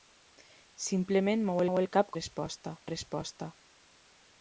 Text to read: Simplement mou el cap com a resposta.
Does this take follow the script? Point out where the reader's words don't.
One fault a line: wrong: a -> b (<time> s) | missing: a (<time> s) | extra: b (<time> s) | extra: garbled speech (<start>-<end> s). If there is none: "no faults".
extra: mou (1.7 s)
wrong: com -> resposta (2.2 s)